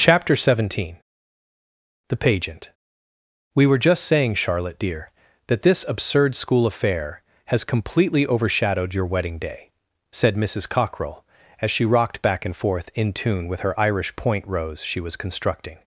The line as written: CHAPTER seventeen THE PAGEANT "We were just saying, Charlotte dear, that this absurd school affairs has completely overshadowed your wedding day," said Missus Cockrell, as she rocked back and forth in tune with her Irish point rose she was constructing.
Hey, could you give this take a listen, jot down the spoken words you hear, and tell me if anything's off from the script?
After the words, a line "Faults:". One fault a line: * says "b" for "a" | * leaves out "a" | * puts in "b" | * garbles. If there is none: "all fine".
CHAPTER seventeen THE PAGEANT "We were just saying, Charlotte dear, that this absurd school affair has completely overshadowed your wedding day," said Missus Cockrell, as she rocked back and forth in tune with her Irish point rose she was constructing.
Faults:
* says "affair" for "affairs"